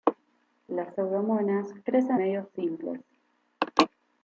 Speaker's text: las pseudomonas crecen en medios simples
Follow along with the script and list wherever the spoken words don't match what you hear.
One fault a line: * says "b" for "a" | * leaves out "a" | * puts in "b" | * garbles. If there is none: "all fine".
* leaves out "en"